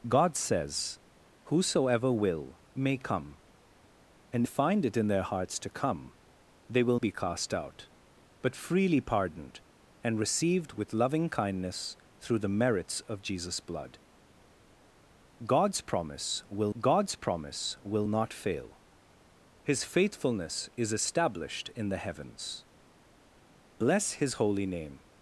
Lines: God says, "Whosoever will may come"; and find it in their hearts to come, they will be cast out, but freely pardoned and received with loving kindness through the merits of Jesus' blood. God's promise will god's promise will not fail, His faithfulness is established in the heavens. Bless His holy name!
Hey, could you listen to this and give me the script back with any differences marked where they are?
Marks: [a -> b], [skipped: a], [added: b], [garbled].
God says, "Whosoever will may come"; and find it in their hearts to come, they will be cast out, but freely pardoned and received with loving kindness through the merits of Jesus' blood. God's promise will god's promise will not fail, His faithfulness is established in the heavens. Bless His holy name!